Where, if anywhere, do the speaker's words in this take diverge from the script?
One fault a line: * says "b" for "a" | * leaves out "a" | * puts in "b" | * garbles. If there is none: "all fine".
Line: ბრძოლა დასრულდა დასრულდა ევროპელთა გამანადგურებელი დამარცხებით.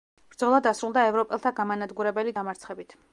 * leaves out "დასრულდა"